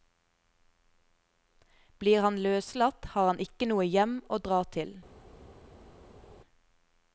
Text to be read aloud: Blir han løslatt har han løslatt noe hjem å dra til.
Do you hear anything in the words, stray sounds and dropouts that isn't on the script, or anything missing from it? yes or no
yes